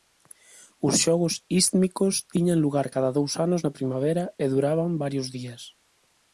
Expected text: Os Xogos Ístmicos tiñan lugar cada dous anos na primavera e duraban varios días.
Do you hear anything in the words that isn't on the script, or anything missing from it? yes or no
no